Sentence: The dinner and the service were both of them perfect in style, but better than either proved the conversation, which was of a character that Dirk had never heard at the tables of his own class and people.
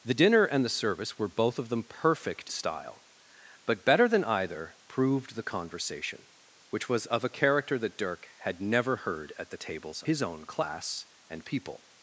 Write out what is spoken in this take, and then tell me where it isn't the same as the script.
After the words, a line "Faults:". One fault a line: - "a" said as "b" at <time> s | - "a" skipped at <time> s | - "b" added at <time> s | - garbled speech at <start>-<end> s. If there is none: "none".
The dinner and the service were both of them perfect style, but better than either proved the conversation, which was of a character that Dirk had never heard at the tables his own class and people.
Faults:
- "in" skipped at 2.5 s
- "of" skipped at 10.0 s